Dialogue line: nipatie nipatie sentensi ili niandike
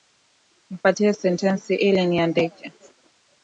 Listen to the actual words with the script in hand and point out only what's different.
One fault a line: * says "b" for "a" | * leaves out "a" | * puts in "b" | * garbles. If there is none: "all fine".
* leaves out "nipatie"